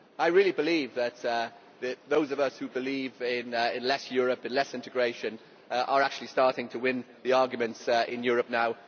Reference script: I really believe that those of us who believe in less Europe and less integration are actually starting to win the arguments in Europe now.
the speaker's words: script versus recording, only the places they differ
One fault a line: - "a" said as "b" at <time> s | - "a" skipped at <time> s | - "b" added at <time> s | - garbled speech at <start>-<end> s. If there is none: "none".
none